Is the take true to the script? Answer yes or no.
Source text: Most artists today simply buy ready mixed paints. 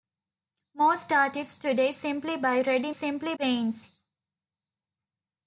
no